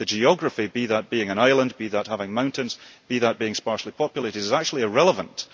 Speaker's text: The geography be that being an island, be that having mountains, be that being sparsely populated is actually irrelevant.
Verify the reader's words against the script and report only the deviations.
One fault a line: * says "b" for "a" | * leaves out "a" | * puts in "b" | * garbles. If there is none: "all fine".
all fine